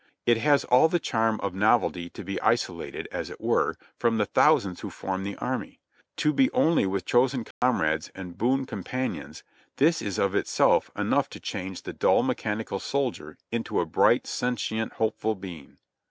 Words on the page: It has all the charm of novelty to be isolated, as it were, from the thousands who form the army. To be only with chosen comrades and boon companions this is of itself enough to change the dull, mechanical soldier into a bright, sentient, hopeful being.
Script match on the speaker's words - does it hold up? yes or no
yes